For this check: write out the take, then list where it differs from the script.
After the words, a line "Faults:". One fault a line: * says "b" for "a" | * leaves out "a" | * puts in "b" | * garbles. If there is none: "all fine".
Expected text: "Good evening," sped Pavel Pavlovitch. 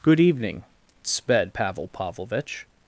"Good evening," sped Pavel Pavlovitch.
Faults:
all fine